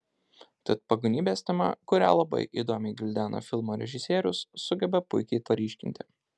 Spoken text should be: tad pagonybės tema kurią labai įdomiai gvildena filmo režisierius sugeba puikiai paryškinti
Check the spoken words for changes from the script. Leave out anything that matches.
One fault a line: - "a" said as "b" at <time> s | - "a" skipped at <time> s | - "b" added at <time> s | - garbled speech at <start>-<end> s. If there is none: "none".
none